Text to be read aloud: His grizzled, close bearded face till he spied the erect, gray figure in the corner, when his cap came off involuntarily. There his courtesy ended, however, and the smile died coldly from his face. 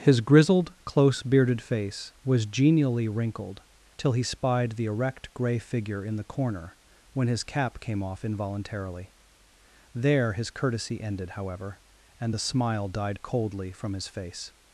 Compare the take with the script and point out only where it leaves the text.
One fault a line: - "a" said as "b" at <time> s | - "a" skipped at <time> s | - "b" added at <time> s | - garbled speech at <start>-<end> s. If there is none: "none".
- "was genially wrinkled" added at 2.2 s